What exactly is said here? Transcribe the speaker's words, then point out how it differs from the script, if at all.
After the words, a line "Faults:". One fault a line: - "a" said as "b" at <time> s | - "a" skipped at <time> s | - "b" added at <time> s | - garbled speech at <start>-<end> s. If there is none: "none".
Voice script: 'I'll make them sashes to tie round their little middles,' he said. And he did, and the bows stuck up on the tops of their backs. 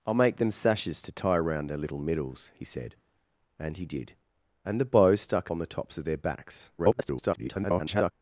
'I'll make them sashes to tie round their little middles,' he said. And he did, and the bows stuck on the tops of their backs. [garbled]
Faults:
- "up" skipped at 5.5 s
- garbled speech at 6.8-8.1 s